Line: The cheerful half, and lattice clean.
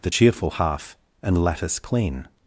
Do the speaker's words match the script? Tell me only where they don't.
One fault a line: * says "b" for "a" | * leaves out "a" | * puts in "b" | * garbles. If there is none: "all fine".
all fine